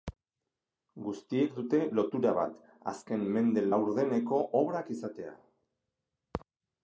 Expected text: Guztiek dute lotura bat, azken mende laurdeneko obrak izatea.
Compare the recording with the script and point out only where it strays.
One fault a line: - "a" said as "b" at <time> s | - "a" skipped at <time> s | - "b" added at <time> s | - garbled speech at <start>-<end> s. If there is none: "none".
none